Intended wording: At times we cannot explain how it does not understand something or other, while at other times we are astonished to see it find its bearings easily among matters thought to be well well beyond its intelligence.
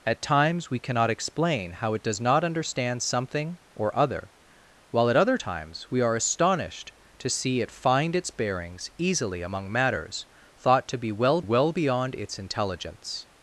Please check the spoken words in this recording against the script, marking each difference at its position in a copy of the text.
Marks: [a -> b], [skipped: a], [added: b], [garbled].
At times we cannot explain how it does not understand something or other, while at other times we are astonished to see it find its bearings easily among matters thought to be well well beyond its intelligence.